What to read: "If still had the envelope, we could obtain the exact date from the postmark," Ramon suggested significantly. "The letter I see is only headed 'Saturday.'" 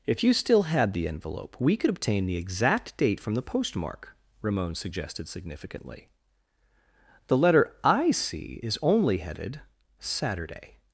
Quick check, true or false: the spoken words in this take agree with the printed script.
false